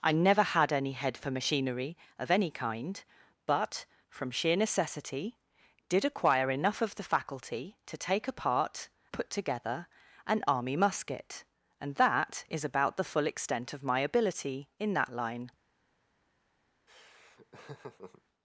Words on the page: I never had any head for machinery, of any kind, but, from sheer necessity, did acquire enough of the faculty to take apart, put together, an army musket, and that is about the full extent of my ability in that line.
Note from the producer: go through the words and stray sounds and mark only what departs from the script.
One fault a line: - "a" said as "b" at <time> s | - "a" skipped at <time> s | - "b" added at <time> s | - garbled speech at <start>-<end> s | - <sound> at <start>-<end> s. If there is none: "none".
- laugh at 16.9-18.2 s